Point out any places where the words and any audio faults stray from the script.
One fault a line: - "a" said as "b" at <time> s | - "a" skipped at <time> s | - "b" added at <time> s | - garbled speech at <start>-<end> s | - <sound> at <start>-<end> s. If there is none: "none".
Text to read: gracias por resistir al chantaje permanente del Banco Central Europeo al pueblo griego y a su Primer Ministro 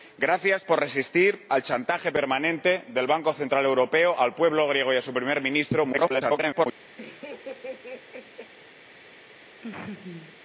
- garbled speech at 5.9-6.7 s
- laugh at 7.0-8.5 s
- laugh at 9.6-10.4 s